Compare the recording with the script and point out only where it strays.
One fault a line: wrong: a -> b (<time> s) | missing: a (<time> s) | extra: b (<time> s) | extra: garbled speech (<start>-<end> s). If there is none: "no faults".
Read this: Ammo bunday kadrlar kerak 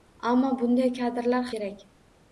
no faults